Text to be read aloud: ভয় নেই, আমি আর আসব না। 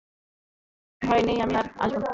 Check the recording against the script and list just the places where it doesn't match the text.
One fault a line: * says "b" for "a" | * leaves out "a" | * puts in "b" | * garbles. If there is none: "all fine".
all fine